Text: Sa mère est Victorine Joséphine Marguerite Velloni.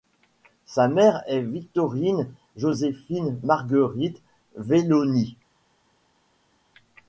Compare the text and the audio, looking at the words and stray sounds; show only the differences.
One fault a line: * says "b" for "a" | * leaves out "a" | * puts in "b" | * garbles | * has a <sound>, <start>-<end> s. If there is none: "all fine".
all fine